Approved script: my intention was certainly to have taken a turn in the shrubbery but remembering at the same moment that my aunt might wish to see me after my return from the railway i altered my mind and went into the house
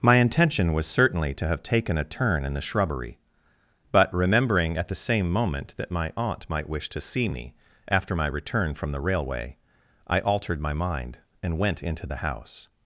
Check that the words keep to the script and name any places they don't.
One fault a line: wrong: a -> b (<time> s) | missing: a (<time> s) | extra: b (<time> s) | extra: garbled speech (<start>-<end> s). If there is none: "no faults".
no faults